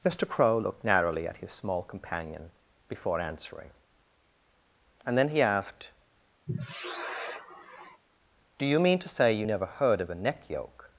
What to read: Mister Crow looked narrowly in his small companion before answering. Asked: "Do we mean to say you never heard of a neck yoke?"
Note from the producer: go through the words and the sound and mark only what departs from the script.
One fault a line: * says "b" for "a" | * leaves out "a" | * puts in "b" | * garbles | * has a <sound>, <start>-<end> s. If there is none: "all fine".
* says "at" for "in"
* puts in "And then he"
* has a sigh, 6.5-8.0 s
* says "you" for "we"